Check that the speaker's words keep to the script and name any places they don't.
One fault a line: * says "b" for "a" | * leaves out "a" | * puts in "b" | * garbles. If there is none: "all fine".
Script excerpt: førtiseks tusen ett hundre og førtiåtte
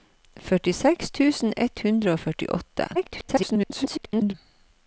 * garbles